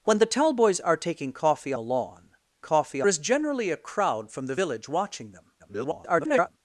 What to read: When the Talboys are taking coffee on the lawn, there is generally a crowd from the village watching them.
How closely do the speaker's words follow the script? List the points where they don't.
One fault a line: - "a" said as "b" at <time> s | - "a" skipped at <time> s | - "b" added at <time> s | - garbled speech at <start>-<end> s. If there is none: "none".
- "on" skipped at 1.7 s
- "there" said as "coffee" at 2.6 s
- garbled speech at 5.6-6.6 s